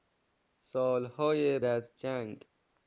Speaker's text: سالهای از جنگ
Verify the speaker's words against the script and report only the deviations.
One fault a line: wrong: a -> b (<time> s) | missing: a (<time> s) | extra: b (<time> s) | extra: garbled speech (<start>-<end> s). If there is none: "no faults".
no faults